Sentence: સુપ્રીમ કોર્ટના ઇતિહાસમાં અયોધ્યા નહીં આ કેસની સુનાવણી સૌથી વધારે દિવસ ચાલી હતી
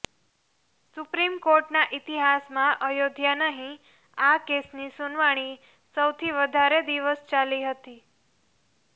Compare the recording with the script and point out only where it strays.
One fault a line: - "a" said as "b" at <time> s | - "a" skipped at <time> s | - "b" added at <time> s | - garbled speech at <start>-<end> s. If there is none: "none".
none